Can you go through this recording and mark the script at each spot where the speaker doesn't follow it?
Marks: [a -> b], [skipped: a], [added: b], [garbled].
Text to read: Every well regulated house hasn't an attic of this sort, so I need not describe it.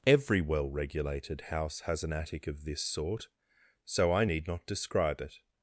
Every well regulated house [hasn't -> has] an attic of this sort, so I need not describe it.